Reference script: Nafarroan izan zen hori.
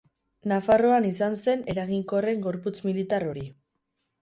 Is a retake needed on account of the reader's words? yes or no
yes